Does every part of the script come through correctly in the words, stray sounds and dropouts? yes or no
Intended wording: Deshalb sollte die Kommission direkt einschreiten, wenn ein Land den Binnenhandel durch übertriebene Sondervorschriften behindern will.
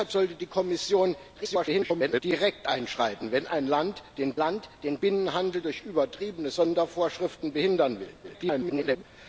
no